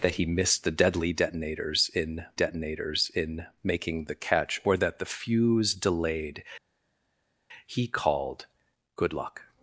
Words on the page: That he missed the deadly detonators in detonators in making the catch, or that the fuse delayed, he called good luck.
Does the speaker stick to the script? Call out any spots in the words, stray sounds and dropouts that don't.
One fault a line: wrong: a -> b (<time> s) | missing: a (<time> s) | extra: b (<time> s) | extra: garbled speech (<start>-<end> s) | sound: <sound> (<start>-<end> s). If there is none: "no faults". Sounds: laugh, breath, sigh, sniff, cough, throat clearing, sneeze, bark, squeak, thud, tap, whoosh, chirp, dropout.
no faults